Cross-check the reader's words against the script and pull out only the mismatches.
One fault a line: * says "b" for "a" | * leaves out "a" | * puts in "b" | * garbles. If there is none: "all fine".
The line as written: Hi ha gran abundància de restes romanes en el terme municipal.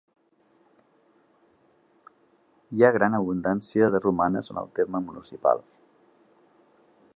* leaves out "restes"